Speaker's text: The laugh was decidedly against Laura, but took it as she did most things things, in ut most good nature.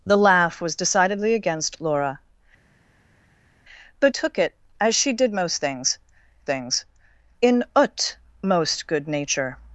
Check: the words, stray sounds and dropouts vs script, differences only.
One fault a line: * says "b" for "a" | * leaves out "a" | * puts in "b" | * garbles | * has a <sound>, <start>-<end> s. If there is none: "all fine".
all fine